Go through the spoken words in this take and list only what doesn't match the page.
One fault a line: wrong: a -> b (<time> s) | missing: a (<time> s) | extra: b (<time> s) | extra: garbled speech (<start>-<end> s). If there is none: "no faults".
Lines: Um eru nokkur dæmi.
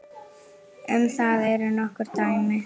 extra: það (1.2 s)